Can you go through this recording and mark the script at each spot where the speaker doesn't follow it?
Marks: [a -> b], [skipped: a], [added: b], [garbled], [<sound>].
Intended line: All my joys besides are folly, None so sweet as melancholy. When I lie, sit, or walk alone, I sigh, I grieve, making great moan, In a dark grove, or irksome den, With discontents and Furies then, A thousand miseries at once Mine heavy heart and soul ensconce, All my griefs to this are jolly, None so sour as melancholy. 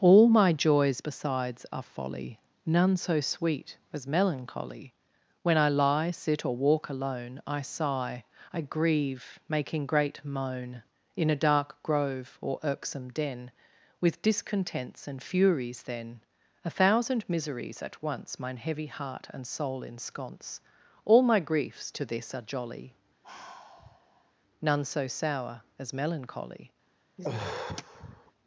All my joys besides are folly, None so sweet as melancholy. When I lie, sit, or walk alone, I sigh, I grieve, making great moan, In a dark grove, or irksome den, With discontents and Furies then, A thousand miseries at once Mine heavy heart and soul ensconce, All my griefs to this are jolly, [sigh] None so sour as melancholy. [sigh]